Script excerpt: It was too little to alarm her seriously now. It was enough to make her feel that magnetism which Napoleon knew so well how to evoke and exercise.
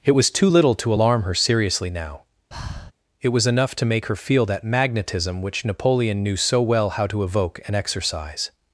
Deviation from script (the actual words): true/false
false